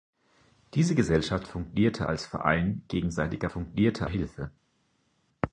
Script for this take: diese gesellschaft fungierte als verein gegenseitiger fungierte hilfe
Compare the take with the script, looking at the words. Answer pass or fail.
pass